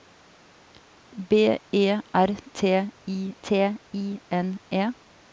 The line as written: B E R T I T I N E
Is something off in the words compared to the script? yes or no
no